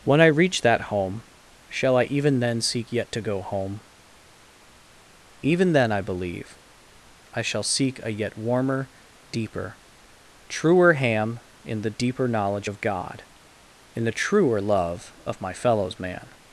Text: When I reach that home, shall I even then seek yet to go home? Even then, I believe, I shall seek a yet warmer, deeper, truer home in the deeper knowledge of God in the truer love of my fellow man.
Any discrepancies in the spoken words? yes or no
yes